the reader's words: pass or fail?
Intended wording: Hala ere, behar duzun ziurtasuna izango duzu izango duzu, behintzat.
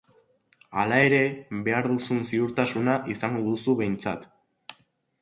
fail